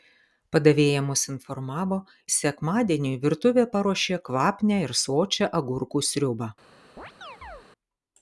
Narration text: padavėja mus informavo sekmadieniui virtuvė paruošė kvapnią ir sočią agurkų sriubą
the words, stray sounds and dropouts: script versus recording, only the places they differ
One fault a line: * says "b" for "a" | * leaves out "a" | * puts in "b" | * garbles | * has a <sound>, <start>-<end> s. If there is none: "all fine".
* has a chirp, 7.0-7.6 s